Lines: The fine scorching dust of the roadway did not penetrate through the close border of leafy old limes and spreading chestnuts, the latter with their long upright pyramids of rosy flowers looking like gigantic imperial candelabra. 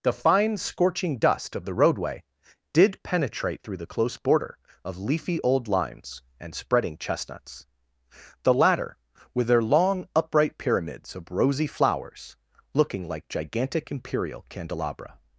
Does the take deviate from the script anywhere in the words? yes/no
yes